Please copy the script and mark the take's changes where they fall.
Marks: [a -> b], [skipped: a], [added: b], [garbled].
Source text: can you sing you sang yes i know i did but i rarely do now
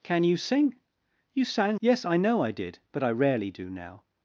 can you sing you sang yes i know i did but i rarely do now